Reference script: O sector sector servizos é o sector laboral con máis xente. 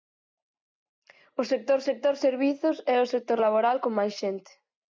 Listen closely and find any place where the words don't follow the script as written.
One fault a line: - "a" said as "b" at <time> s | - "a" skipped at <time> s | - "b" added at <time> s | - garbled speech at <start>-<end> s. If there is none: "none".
none